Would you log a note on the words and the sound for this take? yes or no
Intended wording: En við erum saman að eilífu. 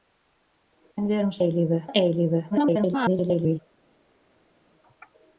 yes